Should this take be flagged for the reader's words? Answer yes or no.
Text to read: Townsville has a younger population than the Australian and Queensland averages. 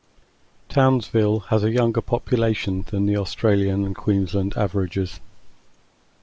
no